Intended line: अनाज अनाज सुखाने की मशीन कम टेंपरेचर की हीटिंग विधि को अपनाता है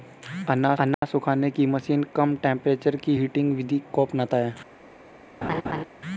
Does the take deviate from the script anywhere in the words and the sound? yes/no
yes